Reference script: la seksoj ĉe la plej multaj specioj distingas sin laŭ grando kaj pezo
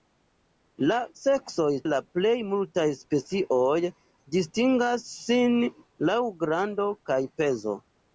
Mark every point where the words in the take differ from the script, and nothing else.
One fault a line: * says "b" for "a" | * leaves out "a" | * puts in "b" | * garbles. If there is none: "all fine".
* leaves out "ĉe"